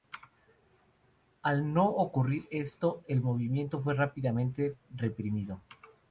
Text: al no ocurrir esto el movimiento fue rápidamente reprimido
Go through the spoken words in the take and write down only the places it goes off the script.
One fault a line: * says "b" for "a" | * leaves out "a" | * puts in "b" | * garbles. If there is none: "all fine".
all fine